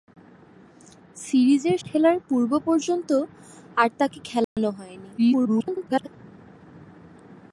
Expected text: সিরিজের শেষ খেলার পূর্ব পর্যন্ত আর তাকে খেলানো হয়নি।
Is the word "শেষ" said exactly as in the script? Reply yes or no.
no